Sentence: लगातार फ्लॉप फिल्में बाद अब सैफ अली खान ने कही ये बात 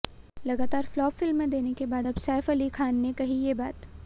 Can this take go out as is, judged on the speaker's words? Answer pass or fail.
fail